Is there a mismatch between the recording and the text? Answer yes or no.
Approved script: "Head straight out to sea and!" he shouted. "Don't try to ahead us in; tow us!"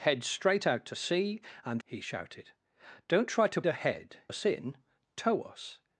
no